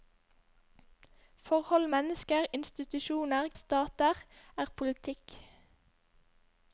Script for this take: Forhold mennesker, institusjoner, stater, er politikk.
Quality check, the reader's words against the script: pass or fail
pass